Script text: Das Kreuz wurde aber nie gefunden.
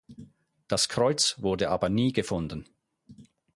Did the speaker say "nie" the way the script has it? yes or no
yes